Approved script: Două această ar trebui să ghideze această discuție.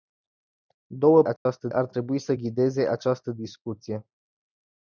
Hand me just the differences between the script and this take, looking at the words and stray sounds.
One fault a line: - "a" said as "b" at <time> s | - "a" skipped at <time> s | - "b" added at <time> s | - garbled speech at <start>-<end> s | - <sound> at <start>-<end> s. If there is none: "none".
- dropout at 1.4-1.5 s